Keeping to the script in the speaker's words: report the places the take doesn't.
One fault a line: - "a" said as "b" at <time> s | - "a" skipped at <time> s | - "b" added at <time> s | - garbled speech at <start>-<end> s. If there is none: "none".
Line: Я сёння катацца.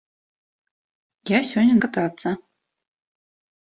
none